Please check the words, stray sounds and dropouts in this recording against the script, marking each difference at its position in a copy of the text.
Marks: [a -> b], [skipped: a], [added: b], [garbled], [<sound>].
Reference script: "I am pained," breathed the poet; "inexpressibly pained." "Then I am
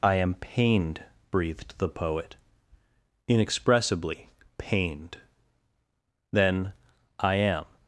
"I am pained," breathed the poet; "inexpressibly pained." "Then I am